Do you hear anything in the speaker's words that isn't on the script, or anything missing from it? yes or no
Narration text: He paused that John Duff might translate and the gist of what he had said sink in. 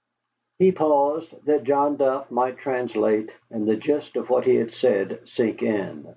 no